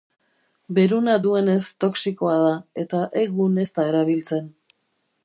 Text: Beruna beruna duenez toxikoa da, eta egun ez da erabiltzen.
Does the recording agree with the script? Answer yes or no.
no